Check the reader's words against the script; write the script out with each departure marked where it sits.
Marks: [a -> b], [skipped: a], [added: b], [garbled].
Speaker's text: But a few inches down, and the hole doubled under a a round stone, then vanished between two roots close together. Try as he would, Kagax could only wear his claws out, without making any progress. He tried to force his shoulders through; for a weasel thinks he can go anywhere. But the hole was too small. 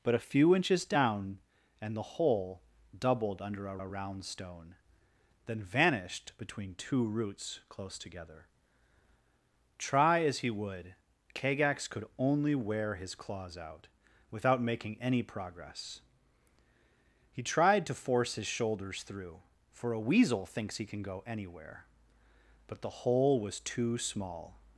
But a few inches down, and the hole doubled under a a round stone, then vanished between two roots close together. Try as he would, Kagax could only wear his claws out, without making any progress. He tried to force his shoulders through; for a weasel thinks he can go anywhere. But the hole was too small.